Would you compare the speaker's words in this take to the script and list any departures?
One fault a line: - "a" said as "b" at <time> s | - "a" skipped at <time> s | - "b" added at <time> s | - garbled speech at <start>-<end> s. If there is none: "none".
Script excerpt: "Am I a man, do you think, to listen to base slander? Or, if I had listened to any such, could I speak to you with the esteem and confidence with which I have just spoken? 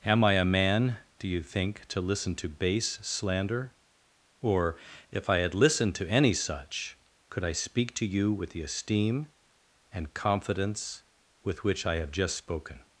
none